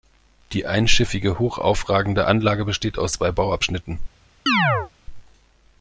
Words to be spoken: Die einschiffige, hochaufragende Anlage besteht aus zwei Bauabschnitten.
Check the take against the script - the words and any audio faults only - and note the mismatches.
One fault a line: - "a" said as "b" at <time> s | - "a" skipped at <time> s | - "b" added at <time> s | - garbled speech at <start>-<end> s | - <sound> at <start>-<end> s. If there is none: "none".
- chirp at 4.5-4.9 s